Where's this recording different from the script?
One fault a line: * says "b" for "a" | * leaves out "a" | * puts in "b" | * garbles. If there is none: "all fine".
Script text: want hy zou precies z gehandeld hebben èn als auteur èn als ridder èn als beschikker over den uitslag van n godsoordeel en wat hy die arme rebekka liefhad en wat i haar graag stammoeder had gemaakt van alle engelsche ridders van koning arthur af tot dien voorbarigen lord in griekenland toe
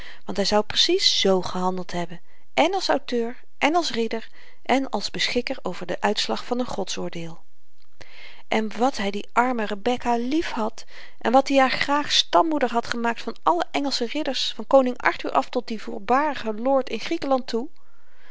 all fine